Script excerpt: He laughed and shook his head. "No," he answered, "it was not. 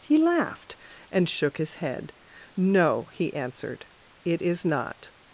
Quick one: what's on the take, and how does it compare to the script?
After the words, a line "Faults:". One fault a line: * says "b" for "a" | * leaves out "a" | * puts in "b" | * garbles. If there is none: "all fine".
He laughed and shook his head. "No," he answered, "it is not.
Faults:
* says "is" for "was"